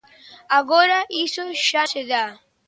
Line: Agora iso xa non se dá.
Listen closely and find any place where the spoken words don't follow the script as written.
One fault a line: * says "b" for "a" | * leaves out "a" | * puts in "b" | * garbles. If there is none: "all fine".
* leaves out "non"